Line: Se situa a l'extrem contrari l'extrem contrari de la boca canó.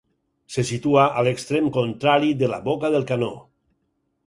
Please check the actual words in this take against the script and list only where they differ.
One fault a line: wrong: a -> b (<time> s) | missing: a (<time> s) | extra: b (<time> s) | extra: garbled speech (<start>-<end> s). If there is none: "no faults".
missing: l'extrem contrari (2.3 s)
extra: del (3.0 s)